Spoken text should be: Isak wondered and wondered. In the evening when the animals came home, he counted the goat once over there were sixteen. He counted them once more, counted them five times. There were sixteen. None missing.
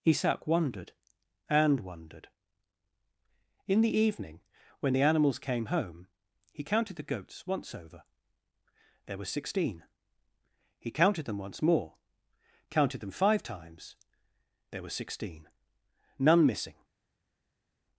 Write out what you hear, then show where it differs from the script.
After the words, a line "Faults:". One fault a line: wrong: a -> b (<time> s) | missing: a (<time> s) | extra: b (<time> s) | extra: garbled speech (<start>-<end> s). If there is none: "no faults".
Isak wondered and wondered. In the evening when the animals came home, he counted the goats once over there were sixteen. He counted them once more, counted them five times. There were sixteen. None missing.
Faults:
wrong: goat -> goats (7.1 s)